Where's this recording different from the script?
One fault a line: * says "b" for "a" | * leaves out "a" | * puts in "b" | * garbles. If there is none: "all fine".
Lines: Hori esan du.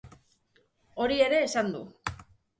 * puts in "ere"